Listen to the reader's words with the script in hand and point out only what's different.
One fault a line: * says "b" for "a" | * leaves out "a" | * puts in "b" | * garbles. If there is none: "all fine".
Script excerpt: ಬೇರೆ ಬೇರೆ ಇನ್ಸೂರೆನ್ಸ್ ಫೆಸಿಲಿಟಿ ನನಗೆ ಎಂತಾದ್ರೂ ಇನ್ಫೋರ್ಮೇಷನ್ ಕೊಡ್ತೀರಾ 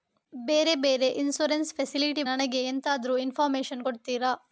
all fine